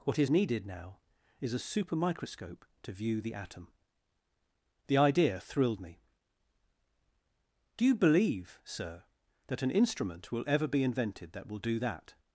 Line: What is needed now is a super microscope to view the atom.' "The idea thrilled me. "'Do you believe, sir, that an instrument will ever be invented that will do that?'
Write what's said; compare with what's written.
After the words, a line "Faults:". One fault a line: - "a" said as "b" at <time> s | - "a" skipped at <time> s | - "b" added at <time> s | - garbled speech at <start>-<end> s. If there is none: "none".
What is needed now is a super microscope to view the atom.' "The idea thrilled me. "'Do you believe, sir, that an instrument will ever be invented that will do that?'
Faults:
none